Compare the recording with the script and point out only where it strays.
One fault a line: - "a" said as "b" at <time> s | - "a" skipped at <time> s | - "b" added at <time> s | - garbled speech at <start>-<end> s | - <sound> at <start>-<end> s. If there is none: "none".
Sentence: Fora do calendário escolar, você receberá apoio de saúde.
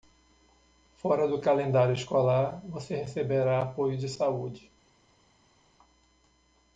none